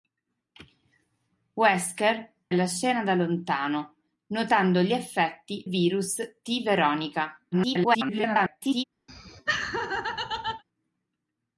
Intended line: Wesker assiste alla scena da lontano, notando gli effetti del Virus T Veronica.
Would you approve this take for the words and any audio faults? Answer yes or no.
no